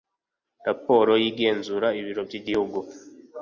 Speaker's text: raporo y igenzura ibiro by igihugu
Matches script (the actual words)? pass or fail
pass